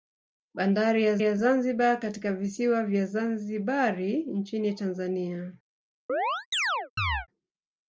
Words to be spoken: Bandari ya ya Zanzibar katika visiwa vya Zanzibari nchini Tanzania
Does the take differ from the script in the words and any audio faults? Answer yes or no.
yes